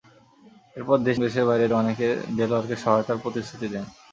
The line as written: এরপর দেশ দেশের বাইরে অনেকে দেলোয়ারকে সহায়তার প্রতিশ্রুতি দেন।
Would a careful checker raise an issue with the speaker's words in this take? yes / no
no